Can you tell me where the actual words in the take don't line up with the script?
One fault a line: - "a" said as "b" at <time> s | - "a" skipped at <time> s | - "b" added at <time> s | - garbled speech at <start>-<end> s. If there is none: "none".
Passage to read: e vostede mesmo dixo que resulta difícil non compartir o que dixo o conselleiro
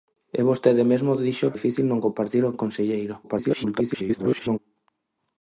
- "que resulta" skipped at 1.5 s
- "que dixo" skipped at 2.5 s
- garbled speech at 3.2-4.6 s